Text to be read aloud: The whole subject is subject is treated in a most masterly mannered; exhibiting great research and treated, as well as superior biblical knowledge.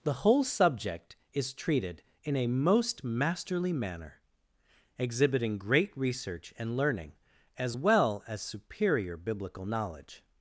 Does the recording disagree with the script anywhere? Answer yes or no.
yes